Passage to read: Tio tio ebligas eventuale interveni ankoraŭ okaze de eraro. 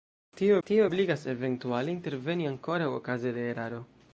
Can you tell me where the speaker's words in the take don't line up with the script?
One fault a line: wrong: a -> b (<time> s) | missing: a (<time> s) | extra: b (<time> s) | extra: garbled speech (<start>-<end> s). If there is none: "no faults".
no faults